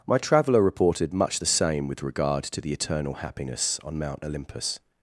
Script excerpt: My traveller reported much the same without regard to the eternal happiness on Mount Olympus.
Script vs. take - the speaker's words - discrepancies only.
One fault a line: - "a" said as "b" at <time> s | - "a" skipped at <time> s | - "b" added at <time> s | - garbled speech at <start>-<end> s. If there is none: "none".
- "without" said as "with" at 1.9 s